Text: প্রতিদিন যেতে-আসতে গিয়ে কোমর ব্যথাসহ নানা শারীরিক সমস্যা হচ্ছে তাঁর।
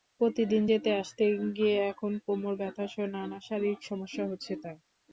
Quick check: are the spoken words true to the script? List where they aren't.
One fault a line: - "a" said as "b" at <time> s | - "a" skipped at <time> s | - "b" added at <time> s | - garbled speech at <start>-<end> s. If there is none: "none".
- "এখন" added at 1.9 s